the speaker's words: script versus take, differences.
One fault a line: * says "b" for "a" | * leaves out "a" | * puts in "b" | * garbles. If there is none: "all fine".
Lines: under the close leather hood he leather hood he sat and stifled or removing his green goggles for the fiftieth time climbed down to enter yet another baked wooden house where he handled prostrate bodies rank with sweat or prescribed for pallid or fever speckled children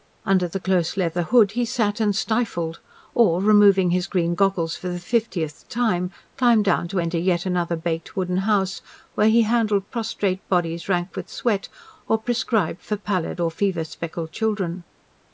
* leaves out "leather hood he"